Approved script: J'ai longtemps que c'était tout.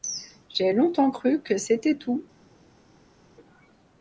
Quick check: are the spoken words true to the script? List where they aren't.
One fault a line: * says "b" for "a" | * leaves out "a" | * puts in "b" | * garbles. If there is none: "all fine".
* puts in "cru"